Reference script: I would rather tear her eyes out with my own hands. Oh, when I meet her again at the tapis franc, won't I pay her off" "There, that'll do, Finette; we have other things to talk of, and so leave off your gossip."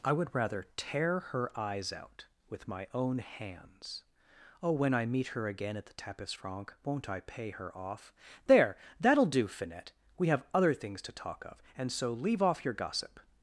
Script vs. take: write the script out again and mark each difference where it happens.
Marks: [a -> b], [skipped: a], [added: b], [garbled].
I would rather tear her eyes out with my own hands. Oh, when I meet her again at the tapis franc, won't I pay her off" "There, that'll do, Finette; we have other things to talk of, and so leave off your gossip."